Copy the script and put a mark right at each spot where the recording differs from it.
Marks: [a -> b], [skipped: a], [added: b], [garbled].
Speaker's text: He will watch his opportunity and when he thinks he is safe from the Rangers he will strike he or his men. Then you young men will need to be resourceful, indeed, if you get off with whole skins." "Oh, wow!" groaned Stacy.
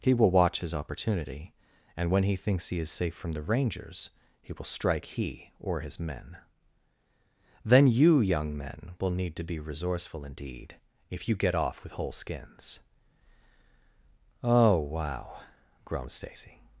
He will watch his opportunity and when he thinks he is safe from the Rangers he will strike he or his men. Then you young men will need to be resourceful, indeed, if you get off with whole skins." "Oh, wow!" groaned Stacy.